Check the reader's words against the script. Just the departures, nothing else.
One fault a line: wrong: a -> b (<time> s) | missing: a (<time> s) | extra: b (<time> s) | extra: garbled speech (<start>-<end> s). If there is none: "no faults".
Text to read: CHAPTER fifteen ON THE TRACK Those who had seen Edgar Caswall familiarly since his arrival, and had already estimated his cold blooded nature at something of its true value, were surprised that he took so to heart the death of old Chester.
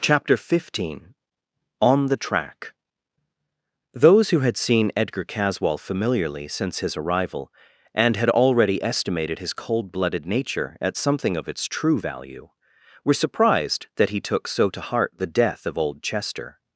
no faults